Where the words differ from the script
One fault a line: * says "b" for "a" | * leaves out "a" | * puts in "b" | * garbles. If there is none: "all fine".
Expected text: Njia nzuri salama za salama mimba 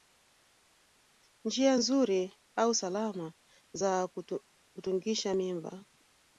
* puts in "au"
* says "kutungisha" for "salama"